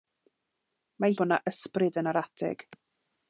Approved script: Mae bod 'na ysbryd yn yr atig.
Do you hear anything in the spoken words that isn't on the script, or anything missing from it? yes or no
no